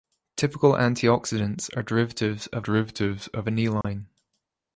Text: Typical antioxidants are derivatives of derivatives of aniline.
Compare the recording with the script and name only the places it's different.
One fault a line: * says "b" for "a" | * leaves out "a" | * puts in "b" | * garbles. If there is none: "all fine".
all fine